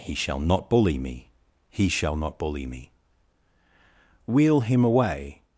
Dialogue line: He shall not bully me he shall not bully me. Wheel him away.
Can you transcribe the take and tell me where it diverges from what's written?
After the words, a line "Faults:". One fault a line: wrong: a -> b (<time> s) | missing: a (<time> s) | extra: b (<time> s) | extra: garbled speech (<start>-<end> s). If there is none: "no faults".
He shall not bully me he shall not bully me. Wheel him away.
Faults:
no faults